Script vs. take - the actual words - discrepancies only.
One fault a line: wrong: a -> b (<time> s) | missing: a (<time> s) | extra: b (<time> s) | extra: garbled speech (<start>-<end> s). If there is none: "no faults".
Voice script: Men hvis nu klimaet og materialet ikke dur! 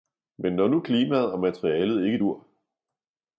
wrong: hvis -> når (0.5 s)